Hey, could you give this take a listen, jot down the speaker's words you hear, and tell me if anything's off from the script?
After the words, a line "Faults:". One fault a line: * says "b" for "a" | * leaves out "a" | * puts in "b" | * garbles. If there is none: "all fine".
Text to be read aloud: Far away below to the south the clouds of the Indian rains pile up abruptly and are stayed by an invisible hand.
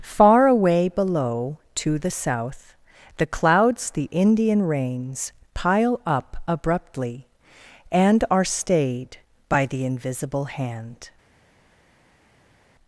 Far away below to the south the clouds the Indian rains pile up abruptly and are stayed by the invisible hand.
Faults:
* leaves out "of"
* says "the" for "an"